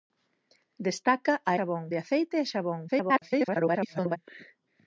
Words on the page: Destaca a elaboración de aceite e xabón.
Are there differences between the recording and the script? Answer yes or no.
yes